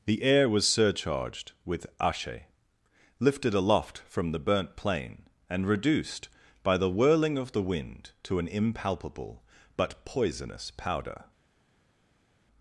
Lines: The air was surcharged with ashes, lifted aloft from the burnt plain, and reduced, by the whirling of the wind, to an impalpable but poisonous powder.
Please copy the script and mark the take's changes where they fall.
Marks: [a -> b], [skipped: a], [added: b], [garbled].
The air was surcharged with [ashes, -> ashe] lifted aloft from the burnt plain, and reduced, by the whirling of the wind, to an impalpable but poisonous powder.